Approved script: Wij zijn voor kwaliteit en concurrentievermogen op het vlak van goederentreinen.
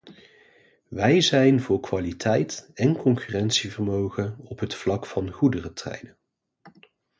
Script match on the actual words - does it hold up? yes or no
yes